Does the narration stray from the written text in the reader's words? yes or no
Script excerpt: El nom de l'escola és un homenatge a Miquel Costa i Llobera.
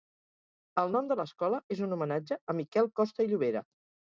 no